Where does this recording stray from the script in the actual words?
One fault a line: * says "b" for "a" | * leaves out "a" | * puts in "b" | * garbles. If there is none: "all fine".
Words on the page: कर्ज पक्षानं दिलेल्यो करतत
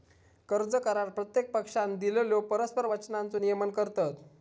* puts in "करार प्रत्येक"
* puts in "परस्पर वचनांचो नियमन"